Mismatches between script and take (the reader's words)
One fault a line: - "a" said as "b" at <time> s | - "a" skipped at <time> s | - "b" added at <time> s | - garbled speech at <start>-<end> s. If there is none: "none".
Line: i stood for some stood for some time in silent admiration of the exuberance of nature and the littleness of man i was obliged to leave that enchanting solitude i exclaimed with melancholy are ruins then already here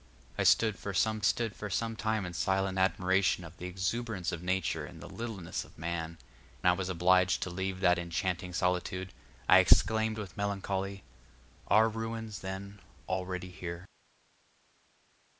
none